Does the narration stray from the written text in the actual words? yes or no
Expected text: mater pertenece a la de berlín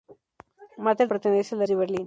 no